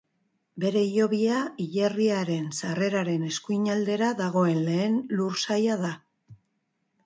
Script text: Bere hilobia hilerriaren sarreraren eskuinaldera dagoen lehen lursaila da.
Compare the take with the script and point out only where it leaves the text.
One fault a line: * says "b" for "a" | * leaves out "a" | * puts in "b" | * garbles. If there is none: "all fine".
all fine